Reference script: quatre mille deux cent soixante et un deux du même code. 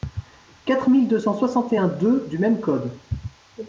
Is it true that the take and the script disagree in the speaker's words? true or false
false